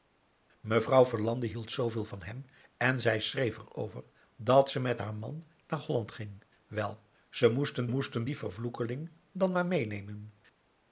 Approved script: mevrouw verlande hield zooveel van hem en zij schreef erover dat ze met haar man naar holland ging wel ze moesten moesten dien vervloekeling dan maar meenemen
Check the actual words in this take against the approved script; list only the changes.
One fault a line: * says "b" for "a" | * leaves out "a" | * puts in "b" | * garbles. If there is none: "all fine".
all fine